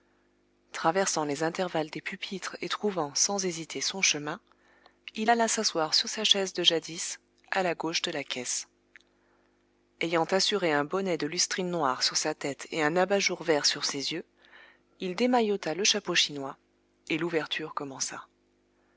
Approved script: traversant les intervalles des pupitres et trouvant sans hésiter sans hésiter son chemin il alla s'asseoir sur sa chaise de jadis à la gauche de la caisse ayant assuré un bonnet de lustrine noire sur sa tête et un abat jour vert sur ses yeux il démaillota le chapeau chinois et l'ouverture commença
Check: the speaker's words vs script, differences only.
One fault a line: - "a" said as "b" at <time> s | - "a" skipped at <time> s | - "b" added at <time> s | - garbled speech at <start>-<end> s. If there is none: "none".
- "sans hésiter" skipped at 3.8 s